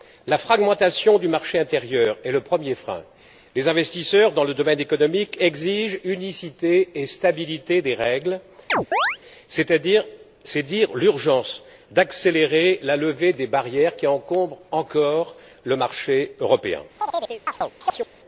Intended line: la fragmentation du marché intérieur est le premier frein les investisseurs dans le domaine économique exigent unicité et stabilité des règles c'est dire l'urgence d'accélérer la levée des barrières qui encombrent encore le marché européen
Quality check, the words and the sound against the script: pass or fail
fail